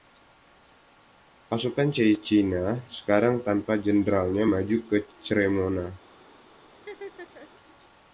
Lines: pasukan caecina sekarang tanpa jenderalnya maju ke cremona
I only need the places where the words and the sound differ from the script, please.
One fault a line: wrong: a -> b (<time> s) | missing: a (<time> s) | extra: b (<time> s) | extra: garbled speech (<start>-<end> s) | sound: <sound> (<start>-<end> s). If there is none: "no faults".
sound: laugh (6.7-7.5 s)